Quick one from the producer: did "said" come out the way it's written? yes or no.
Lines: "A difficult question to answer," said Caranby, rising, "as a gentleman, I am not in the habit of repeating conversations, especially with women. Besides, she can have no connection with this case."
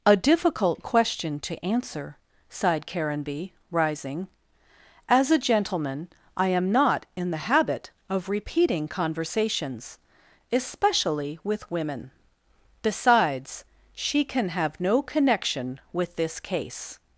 no